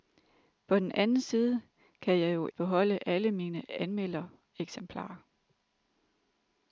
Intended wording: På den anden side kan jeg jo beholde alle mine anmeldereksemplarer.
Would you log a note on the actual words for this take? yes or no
no